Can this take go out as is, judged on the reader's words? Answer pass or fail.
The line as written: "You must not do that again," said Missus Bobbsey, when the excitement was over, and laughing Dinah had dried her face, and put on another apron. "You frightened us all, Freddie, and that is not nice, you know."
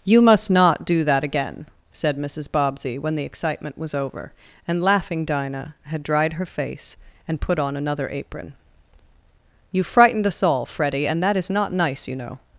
pass